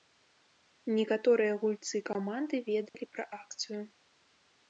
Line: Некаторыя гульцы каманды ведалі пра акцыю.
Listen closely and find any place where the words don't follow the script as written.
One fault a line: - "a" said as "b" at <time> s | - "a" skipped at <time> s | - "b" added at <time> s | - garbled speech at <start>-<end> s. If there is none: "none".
none